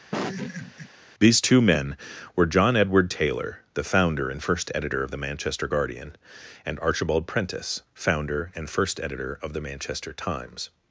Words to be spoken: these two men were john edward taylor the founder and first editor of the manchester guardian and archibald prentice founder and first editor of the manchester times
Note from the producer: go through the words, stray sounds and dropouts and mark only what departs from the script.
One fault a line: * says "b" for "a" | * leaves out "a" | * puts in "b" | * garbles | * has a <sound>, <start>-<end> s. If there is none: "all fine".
* has a laugh, 0.1-0.9 s